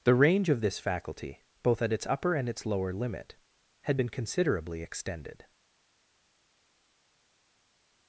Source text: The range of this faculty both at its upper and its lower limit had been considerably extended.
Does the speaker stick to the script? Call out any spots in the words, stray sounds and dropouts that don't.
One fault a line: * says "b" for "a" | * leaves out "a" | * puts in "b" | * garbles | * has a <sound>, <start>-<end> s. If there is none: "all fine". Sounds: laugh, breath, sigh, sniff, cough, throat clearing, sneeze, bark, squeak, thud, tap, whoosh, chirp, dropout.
all fine